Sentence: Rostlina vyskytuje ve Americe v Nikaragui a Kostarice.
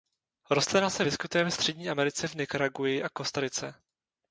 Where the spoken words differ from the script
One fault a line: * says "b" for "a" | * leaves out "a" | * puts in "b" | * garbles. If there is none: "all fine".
* puts in "se"
* puts in "Střední"